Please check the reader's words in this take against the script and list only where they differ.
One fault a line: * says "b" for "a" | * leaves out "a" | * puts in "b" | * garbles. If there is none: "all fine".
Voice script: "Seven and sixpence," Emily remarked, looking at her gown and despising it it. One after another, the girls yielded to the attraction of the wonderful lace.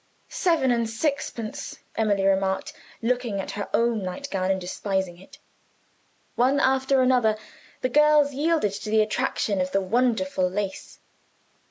* puts in "own night"
* leaves out "it"